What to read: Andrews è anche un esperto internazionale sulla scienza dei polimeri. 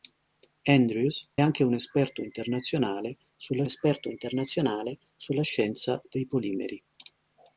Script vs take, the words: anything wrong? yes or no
yes